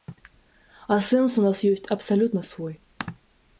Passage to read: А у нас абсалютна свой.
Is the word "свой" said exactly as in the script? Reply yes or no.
yes